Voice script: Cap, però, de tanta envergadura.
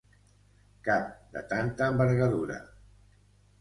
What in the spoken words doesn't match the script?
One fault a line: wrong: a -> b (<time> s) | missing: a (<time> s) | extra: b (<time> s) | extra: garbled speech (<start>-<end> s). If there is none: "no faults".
missing: però (1.1 s)